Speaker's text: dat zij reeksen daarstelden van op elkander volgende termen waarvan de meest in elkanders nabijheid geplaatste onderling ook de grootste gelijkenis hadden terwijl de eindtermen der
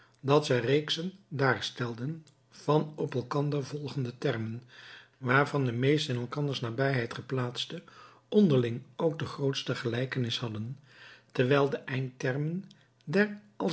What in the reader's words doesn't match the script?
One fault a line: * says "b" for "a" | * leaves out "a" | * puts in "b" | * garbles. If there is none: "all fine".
all fine